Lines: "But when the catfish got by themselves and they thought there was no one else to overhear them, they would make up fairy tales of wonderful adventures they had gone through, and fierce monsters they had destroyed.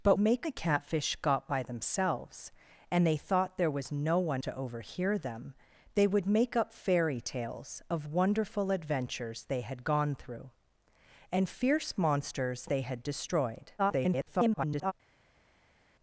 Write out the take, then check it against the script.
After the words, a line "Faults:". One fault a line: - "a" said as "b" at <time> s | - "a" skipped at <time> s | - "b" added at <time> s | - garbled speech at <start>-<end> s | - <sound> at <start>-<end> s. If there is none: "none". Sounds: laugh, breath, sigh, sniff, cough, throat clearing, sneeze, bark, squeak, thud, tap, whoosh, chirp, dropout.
"But make the catfish got by themselves and they thought there was no one to overhear them, they would make up fairy tales of wonderful adventures they had gone through, and fierce monsters they had destroyed. [garbled]
Faults:
- "when" said as "make" at 0.2 s
- "else" skipped at 4.4 s
- garbled speech at 13.8-14.9 s